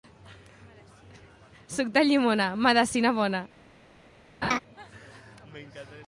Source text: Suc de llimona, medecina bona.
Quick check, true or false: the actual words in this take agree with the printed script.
true